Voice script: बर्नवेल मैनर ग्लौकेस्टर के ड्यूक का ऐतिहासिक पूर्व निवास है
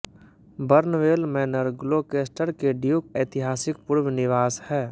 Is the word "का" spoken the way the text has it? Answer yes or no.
no